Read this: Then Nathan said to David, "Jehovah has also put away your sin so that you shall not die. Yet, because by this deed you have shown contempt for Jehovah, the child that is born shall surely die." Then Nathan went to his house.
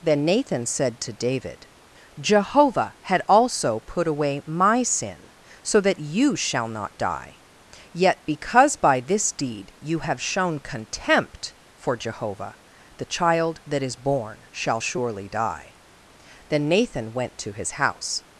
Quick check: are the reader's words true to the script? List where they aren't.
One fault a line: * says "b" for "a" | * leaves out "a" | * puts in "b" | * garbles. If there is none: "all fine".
* says "had" for "has"
* says "my" for "your"